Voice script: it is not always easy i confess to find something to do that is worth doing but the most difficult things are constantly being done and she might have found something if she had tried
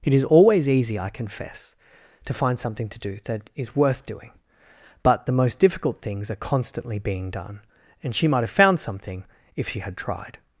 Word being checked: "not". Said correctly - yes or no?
no